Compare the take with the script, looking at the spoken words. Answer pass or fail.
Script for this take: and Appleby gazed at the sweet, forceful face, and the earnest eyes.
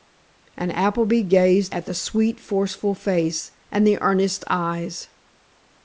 pass